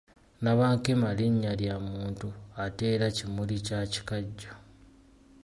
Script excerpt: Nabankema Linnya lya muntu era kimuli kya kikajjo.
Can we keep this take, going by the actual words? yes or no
no